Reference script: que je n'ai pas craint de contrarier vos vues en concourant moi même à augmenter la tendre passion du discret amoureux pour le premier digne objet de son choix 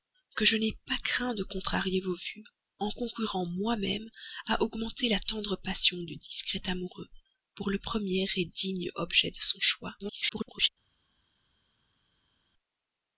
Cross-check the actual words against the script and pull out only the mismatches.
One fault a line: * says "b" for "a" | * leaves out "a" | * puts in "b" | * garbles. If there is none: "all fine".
* garbles